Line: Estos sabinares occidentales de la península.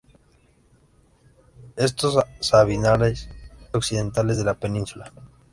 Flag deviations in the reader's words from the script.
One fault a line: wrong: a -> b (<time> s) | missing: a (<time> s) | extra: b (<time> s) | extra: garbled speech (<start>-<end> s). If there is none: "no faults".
no faults